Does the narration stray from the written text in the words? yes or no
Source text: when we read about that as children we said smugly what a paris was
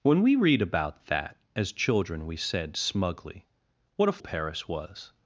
no